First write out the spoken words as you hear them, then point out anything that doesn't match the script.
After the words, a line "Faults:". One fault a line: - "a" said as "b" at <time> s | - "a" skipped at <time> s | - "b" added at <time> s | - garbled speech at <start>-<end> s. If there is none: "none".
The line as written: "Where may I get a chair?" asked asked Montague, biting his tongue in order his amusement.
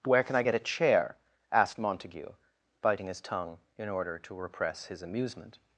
"Where can I get a chair?" asked Montague, biting his tongue in order to repress his amusement.
Faults:
- "may" said as "can" at 0.2 s
- "asked" skipped at 1.8 s
- "to repress" added at 4.2 s